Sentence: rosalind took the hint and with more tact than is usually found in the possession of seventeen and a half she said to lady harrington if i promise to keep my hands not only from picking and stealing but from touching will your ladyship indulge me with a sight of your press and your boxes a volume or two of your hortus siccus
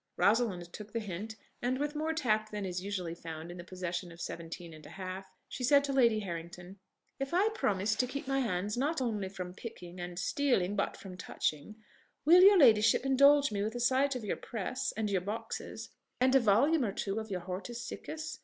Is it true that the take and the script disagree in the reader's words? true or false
true